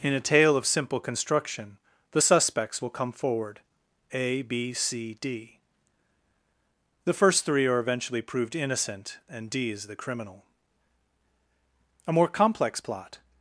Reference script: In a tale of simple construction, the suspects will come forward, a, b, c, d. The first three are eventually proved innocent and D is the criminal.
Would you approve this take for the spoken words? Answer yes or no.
no